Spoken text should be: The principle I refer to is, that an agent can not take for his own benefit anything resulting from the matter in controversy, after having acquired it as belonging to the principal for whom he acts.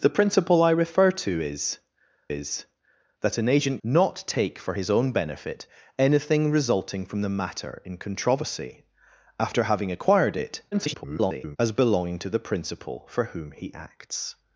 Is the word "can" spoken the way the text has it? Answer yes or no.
no